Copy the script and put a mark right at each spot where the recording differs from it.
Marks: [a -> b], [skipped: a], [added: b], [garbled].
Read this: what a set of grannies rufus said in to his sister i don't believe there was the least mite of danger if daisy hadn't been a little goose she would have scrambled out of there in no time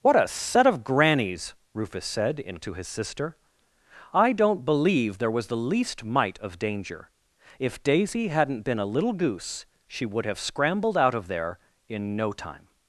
what a set of grannies rufus said in to his sister i don't believe there was the least mite of danger if daisy hadn't been a little goose she would have scrambled out of there in no time